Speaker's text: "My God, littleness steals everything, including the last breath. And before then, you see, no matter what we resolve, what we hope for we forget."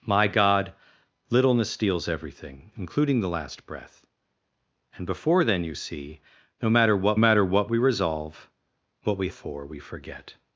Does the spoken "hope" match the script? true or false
false